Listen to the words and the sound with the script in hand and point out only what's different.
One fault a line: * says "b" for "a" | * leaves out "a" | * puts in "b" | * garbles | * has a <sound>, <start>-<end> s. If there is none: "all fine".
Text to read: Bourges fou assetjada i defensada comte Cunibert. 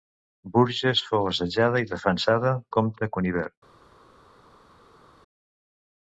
all fine